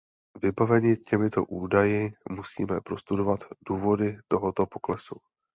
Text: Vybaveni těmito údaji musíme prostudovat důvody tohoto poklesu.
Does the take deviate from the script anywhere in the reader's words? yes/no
no